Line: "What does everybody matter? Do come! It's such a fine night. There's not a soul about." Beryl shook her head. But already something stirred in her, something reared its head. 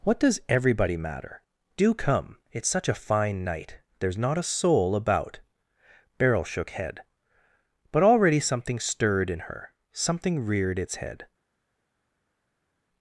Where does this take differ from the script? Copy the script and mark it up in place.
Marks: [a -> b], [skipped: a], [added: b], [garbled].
"What does everybody matter? Do come! It's such a fine night. There's not a soul about." Beryl shook [skipped: her] head. But already something stirred in her, something reared its head.